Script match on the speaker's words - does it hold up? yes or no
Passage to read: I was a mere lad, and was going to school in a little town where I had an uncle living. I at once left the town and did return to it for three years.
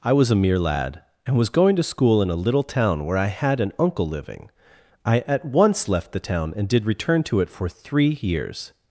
yes